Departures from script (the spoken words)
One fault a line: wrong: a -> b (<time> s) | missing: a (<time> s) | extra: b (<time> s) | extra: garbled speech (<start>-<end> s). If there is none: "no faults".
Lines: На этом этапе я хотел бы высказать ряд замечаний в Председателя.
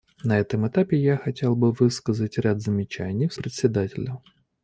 no faults